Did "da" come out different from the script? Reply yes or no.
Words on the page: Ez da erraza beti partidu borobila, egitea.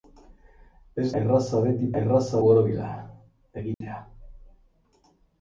yes